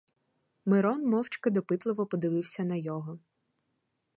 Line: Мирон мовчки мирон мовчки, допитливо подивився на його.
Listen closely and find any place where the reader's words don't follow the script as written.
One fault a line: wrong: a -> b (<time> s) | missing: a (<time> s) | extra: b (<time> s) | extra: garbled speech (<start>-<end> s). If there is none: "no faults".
missing: мирон мовчки (1.5 s)